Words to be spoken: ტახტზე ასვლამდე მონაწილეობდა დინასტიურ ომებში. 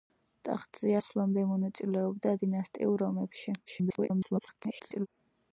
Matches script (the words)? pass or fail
fail